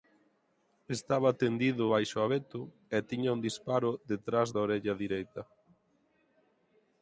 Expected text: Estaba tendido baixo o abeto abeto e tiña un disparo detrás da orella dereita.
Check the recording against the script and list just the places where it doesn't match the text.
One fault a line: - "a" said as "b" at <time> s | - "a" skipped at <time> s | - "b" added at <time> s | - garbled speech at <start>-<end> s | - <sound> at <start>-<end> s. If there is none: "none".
- "abeto" skipped at 2.6 s